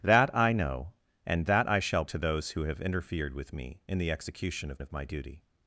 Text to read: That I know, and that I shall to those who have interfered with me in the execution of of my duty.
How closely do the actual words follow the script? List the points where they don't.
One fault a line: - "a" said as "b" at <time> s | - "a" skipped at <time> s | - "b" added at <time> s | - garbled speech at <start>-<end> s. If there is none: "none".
none